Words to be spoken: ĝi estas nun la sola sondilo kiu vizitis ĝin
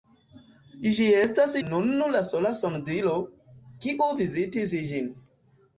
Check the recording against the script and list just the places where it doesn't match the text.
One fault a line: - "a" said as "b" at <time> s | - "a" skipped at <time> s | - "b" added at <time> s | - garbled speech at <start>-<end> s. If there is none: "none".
none